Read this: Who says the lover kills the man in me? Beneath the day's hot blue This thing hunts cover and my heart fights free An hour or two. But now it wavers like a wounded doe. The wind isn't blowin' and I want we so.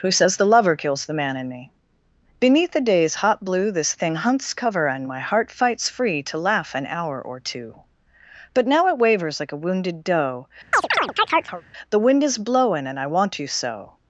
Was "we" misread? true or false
true